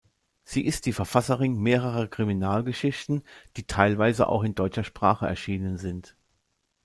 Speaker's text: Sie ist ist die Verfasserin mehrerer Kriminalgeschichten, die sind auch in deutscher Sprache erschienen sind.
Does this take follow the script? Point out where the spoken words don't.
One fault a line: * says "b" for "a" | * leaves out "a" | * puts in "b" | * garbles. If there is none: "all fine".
* leaves out "ist"
* says "teilweise" for "sind"